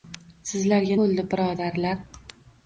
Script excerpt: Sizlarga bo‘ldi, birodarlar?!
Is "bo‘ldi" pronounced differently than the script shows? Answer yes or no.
no